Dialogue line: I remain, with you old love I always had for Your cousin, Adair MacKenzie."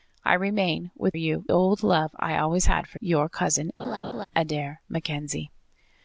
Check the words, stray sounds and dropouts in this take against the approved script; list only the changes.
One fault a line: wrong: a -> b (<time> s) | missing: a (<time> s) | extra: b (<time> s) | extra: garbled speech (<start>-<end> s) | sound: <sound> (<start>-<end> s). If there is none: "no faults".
sound: laugh (3.8-4.3 s)